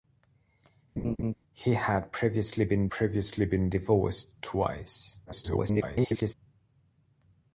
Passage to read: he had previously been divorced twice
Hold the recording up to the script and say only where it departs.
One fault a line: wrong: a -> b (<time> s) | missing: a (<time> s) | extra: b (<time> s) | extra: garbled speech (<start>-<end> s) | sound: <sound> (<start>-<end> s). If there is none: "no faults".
sound: laugh (1.0-1.3 s)
extra: previously been (2.9 s)
extra: garbled speech (5.3-6.3 s)